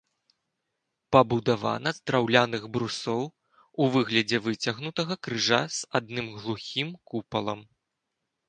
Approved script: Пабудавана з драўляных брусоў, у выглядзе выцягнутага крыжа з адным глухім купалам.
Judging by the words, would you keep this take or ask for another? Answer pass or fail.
pass